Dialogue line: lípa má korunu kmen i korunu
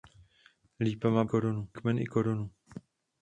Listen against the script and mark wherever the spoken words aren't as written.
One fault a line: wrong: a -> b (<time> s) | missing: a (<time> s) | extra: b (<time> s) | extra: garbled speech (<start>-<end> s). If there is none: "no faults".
no faults